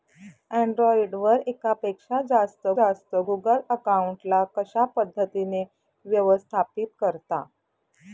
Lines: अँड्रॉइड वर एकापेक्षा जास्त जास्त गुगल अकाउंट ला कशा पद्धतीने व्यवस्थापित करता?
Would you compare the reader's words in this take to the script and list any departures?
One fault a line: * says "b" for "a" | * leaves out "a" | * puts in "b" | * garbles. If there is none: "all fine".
all fine